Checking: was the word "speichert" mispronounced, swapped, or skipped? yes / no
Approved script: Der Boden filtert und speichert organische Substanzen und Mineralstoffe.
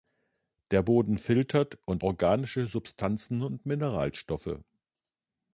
yes